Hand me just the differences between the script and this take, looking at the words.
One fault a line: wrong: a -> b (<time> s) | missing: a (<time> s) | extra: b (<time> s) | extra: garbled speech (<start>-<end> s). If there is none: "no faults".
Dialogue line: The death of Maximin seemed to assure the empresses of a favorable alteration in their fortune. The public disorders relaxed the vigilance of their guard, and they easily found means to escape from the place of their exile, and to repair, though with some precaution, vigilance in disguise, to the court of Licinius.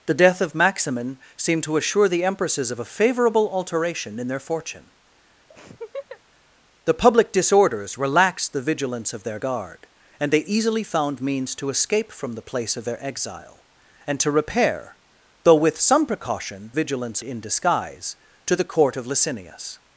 no faults